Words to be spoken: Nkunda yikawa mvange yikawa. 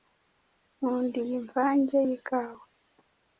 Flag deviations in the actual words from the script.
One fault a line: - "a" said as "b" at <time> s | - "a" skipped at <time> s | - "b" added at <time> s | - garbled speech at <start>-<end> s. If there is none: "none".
- "yikawa" said as "iyi" at 1.2 s